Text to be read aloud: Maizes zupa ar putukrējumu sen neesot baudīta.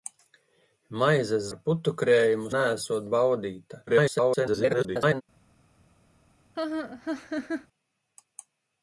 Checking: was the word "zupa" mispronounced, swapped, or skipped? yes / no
yes